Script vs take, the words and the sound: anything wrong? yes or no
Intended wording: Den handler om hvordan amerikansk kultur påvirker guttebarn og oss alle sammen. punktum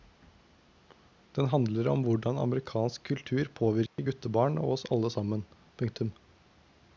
yes